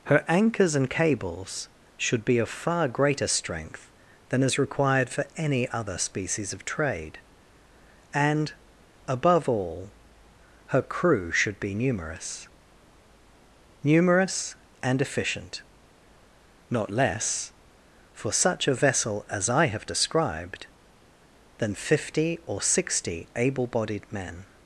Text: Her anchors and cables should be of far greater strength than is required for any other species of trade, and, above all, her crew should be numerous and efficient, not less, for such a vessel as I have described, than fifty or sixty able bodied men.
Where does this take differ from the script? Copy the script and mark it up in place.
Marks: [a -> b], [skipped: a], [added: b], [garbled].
Her anchors and cables should be of far greater strength than is required for any other species of trade, and, above all, her crew should be numerous [added: numerous] and efficient, not less, for such a vessel as I have described, than fifty or sixty able bodied men.